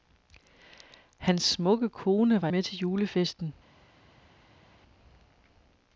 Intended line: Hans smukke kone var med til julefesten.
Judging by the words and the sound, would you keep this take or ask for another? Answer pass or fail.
pass